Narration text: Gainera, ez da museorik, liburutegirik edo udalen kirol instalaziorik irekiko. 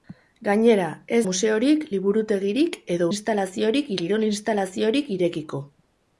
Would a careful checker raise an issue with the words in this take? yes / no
yes